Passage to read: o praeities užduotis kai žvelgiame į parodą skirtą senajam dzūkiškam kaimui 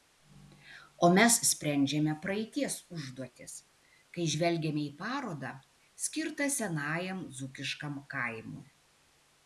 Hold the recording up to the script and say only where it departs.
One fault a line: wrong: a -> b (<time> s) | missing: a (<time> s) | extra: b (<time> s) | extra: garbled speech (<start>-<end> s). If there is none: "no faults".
extra: mes sprendžiame (1.2 s)